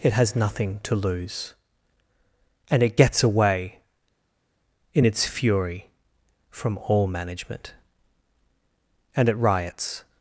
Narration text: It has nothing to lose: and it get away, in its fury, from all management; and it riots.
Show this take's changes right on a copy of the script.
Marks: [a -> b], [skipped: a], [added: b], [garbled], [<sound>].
It has nothing to lose: and it [get -> gets] away, in its fury, from all management; and it riots.